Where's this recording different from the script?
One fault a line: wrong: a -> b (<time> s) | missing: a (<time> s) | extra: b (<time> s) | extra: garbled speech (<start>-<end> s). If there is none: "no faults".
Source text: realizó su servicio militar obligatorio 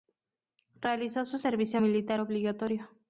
no faults